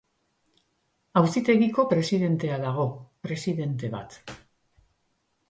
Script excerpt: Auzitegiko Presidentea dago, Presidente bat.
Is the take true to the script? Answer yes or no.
yes